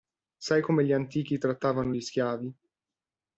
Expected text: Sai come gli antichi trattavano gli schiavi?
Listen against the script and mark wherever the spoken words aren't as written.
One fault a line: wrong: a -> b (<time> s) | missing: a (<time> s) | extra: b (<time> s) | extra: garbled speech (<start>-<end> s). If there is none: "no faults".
no faults